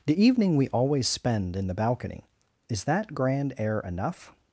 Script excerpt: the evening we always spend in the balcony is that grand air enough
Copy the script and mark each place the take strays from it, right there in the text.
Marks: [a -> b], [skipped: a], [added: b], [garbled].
the evening we always spend in the balcony is that grand air enough